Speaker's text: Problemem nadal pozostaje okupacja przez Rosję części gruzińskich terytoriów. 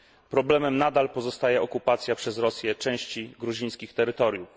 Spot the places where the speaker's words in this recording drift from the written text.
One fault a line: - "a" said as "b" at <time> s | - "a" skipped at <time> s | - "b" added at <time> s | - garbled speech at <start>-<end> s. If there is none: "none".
none